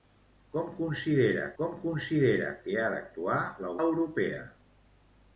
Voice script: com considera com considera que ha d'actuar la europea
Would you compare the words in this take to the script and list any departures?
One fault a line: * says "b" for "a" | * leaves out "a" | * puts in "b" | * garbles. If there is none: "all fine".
all fine